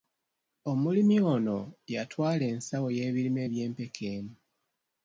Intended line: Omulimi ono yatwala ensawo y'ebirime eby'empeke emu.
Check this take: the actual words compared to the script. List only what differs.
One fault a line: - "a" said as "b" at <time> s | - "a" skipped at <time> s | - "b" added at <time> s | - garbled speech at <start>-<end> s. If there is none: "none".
none